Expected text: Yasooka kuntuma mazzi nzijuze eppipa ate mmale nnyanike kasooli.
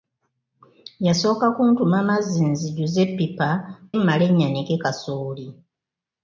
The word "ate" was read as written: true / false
false